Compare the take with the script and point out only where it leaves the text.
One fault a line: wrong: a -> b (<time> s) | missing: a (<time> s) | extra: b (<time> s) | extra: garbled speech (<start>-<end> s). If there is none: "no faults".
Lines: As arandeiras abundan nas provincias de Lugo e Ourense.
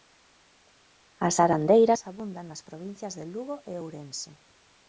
no faults